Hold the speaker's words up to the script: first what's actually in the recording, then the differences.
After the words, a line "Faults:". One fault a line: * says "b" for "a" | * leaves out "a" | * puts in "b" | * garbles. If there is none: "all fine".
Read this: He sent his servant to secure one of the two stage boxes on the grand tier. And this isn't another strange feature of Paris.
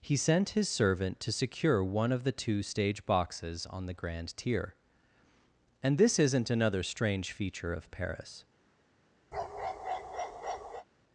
He sent his servant to secure one of the two stage boxes on the grand tier. And this isn't another strange feature of Paris.
Faults:
all fine